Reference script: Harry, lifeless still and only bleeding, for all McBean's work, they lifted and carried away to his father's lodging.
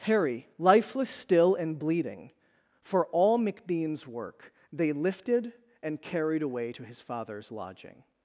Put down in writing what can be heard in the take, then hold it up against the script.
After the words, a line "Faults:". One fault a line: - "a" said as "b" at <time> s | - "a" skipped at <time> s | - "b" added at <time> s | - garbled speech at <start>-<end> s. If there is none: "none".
Harry, lifeless still and bleeding, for all McBean's work, they lifted and carried away to his father's lodging.
Faults:
- "only" skipped at 1.8 s